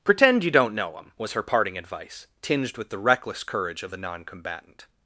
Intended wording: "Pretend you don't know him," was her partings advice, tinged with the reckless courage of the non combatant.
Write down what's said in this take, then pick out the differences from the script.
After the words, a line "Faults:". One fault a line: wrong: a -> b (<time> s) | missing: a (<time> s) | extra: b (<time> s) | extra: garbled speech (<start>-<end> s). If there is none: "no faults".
"Pretend you don't know him," was her parting advice, tinged with the reckless courage of the non combatant.
Faults:
wrong: partings -> parting (1.4 s)